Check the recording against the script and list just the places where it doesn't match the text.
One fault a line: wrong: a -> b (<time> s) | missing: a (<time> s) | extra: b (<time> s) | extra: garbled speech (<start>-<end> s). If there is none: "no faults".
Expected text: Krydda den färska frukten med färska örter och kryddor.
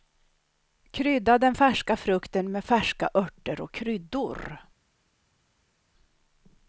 no faults